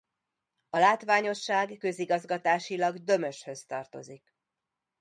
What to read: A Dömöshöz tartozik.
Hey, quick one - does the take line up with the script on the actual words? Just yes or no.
no